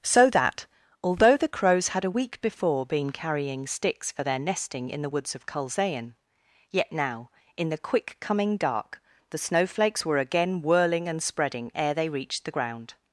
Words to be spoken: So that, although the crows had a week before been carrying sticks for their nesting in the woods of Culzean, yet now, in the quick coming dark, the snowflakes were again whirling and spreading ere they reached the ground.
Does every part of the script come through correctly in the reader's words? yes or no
yes